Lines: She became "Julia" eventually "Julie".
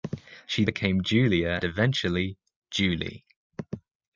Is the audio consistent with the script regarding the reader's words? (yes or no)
yes